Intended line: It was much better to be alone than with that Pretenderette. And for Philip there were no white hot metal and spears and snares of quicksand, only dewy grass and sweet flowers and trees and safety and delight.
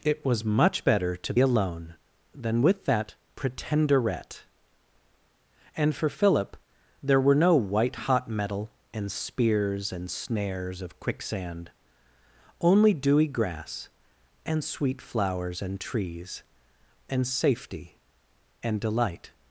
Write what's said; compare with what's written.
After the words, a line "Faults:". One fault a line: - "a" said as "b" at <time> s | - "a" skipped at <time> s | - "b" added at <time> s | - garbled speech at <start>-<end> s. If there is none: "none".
It was much better to alone than with that Pretenderette. And for Philip there were no white hot metal and spears and snares of quicksand, only dewy grass and sweet flowers and trees and safety and delight.
Faults:
- "be" skipped at 1.3 s